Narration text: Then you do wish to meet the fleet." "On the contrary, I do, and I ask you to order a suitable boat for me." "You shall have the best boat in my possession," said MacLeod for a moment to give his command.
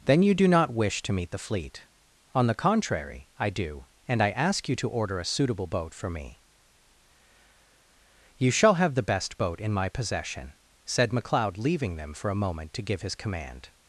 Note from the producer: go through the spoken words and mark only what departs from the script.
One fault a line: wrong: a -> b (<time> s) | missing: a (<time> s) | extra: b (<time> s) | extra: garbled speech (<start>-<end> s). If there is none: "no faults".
extra: not (0.5 s)
extra: leaving them (11.6 s)